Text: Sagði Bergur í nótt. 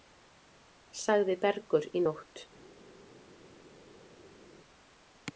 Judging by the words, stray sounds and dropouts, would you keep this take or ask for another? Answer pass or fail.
pass